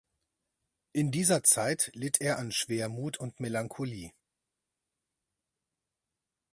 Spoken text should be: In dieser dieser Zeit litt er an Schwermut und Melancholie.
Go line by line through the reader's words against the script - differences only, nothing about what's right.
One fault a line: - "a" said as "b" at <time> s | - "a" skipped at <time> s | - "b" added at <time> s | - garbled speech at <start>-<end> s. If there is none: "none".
- "dieser" skipped at 1.4 s